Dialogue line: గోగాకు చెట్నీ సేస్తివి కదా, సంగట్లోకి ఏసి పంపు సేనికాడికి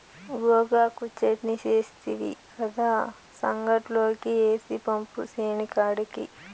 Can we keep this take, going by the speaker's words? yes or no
yes